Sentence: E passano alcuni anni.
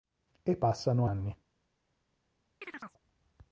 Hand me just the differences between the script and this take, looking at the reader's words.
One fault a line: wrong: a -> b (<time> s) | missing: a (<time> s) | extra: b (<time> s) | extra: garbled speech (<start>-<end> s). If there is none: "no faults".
missing: alcuni (1.1 s)